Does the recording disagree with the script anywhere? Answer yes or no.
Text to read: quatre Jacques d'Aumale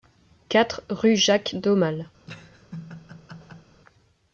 yes